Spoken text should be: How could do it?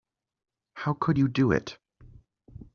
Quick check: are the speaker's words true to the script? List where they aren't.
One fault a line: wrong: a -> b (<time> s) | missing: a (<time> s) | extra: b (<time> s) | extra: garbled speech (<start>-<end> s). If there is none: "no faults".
extra: you (1.2 s)